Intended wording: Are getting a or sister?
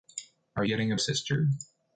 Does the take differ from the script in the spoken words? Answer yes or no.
no